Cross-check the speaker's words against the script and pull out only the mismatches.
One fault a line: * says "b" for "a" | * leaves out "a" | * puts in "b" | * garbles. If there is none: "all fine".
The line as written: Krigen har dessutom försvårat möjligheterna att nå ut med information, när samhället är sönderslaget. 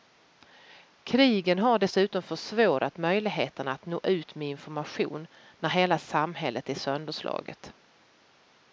* puts in "hela"